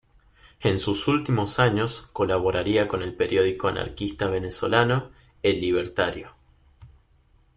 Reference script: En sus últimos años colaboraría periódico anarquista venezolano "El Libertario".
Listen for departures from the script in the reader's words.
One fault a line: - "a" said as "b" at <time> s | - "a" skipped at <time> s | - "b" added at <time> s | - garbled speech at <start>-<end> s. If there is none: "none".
- "con el" added at 2.9 s